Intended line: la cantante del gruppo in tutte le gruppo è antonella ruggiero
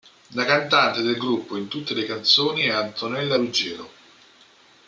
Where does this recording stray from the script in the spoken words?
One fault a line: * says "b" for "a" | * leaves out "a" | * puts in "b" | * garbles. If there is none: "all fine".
* says "canzoni" for "gruppo"